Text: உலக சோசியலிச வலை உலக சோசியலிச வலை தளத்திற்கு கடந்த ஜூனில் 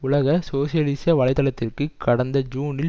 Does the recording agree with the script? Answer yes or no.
no